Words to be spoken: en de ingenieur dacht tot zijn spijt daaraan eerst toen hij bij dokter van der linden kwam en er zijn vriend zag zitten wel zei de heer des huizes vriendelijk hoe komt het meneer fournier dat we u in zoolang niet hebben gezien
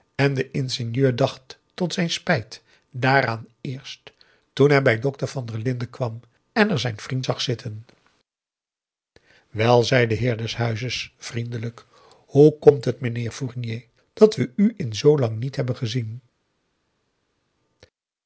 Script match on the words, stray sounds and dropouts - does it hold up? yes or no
yes